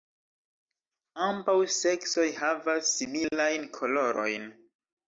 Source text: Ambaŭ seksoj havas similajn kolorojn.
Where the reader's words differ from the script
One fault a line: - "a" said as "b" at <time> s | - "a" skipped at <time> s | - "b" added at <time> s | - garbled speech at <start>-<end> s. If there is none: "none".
none